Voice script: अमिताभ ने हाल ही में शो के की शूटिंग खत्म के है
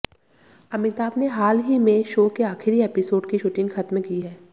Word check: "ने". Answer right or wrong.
right